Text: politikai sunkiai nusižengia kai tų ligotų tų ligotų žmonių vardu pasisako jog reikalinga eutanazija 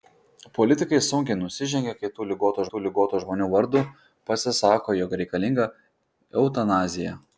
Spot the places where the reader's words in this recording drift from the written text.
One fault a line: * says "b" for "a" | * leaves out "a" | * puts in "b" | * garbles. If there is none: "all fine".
all fine